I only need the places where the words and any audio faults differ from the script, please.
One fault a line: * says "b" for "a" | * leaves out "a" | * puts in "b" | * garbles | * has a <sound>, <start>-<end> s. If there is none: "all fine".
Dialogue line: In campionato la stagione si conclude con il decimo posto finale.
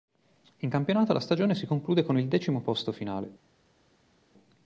all fine